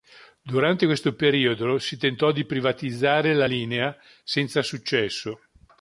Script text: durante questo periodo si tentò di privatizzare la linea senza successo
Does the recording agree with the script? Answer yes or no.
yes